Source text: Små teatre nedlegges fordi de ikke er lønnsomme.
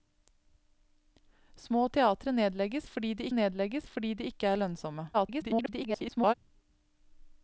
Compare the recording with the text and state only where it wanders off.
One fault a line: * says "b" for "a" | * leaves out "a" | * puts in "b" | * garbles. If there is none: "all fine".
* puts in "nedlegges fordi de"
* garbles